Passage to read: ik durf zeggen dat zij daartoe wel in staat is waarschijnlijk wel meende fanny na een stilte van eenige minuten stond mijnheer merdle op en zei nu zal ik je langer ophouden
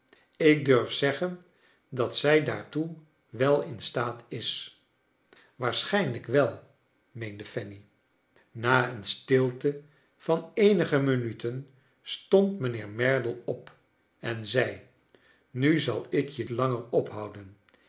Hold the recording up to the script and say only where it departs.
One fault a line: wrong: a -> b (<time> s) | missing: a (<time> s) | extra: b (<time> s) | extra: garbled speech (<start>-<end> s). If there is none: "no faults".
no faults